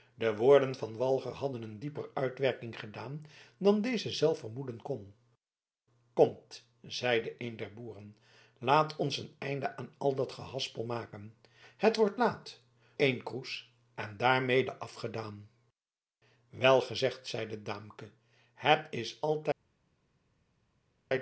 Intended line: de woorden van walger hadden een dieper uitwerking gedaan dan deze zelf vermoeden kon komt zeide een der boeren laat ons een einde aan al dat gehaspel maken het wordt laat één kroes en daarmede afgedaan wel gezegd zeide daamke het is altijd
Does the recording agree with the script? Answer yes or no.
yes